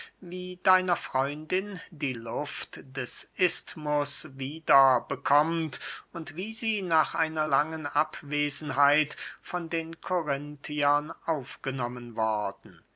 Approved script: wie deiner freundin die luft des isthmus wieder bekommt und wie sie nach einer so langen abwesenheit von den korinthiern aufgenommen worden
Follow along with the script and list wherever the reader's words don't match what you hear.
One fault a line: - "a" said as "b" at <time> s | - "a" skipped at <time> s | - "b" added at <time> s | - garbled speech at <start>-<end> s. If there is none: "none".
- "so" skipped at 7.5 s